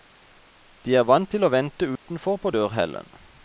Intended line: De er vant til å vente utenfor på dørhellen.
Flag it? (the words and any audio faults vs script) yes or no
yes